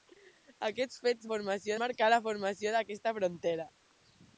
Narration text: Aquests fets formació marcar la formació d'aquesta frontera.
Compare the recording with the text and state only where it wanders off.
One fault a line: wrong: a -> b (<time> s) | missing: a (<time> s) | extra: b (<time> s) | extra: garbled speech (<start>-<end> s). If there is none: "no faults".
no faults